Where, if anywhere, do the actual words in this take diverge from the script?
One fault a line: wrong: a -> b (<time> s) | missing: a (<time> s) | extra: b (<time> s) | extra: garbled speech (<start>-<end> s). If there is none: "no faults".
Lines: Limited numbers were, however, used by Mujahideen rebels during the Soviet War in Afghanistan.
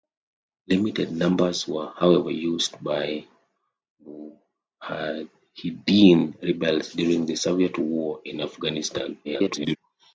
extra: garbled speech (9.2-9.8 s)